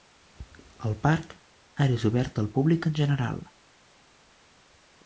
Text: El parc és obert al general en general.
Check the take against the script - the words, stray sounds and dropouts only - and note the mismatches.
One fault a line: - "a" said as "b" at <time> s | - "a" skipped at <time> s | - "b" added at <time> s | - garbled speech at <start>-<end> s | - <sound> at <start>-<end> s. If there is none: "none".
- "ara" added at 1.9 s
- "general" said as "públic" at 2.6 s